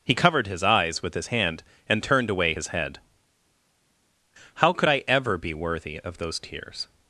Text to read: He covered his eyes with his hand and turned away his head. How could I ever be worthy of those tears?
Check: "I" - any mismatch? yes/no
no